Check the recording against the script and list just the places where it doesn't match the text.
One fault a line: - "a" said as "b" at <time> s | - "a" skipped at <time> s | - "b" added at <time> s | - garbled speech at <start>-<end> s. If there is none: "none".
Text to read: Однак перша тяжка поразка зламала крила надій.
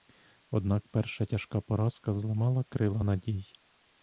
none